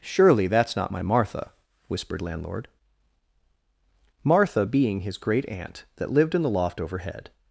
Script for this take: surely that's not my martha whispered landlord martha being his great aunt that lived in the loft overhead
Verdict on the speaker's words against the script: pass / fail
pass